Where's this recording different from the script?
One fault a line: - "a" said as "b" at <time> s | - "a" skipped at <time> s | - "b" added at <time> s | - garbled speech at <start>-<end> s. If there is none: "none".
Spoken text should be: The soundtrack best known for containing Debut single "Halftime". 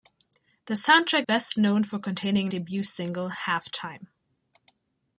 none